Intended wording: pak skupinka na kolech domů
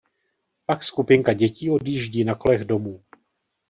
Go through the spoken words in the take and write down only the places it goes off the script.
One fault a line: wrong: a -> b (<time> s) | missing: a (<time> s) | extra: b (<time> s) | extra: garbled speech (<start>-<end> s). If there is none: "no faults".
extra: dětí odjíždí (1.3 s)